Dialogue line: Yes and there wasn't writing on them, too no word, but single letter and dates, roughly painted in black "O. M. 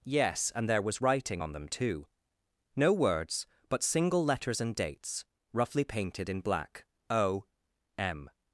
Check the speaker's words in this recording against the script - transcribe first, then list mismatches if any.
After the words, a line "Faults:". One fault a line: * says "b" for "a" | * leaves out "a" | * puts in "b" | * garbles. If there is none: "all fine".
Yes and there was writing on them, too no words, but single letters and dates, roughly painted in black "O. M.
Faults:
* says "was" for "wasn't"
* says "words" for "word"
* says "letters" for "letter"